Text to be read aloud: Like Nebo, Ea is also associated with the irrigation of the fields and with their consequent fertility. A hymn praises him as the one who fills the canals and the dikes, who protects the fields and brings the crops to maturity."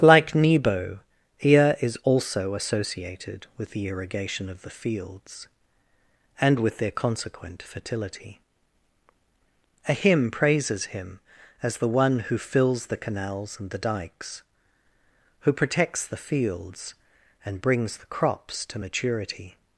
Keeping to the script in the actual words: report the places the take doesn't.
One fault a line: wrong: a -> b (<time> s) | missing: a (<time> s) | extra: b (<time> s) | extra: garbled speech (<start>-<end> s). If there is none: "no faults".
no faults